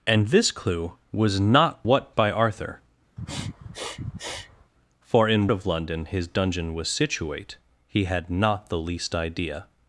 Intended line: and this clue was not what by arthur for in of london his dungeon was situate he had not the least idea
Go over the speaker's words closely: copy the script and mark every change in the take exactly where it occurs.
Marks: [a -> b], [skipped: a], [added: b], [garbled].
and this clue was not what by arthur for in of london his dungeon was situate he had not the least idea